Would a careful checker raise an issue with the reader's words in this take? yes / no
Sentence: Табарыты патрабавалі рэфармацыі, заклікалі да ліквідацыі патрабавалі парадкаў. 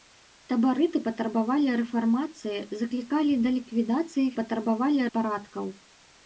no